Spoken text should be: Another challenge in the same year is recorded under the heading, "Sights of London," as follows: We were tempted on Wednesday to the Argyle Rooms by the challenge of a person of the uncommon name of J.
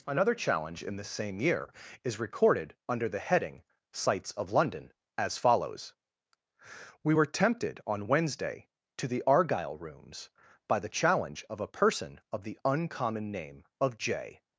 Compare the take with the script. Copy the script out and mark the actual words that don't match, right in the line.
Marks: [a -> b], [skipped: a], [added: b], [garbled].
Another challenge in the same year is recorded under the heading, "Sights of London," as follows: We were tempted on Wednesday to the Argyle Rooms by the challenge of a person of the uncommon name of J.